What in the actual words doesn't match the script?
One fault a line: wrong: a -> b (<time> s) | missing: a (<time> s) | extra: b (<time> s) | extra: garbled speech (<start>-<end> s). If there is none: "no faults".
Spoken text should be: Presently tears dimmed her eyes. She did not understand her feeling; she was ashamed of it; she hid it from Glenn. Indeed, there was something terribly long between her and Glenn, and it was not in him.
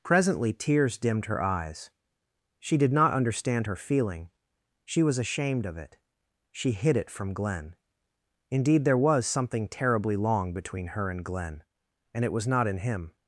no faults